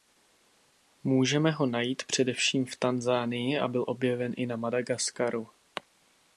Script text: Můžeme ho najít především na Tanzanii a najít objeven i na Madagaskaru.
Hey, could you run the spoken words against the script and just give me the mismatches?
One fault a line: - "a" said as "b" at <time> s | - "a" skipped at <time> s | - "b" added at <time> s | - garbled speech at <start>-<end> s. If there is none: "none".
- "na" said as "v" at 2.6 s
- "najít" said as "byl" at 3.7 s